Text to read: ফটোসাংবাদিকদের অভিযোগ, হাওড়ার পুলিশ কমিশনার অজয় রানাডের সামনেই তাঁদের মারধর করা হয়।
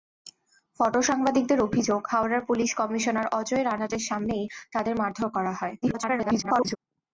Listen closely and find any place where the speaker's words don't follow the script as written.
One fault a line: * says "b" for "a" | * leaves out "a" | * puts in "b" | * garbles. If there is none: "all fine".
* garbles